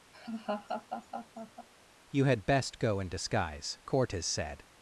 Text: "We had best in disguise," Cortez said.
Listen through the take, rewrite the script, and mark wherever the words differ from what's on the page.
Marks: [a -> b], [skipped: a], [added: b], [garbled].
["We -> You] had best [added: go] in disguise," Cortez said.